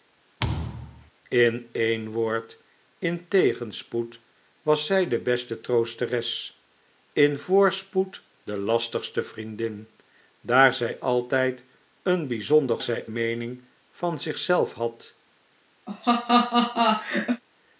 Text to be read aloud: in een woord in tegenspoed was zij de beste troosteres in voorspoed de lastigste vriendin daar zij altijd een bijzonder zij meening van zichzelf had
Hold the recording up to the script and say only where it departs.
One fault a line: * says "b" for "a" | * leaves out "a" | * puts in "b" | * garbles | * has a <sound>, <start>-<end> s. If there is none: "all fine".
* has a thud, 0.4-1.1 s
* has a laugh, 15.9-17.4 s